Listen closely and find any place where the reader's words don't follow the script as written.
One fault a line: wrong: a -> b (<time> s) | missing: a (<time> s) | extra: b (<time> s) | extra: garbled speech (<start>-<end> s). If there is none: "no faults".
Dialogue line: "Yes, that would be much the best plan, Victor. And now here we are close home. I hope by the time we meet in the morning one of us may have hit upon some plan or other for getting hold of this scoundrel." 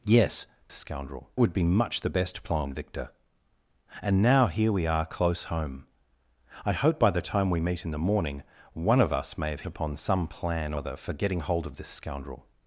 wrong: that -> scoundrel (0.7 s)
missing: hit (9.6 s)
missing: or (10.7 s)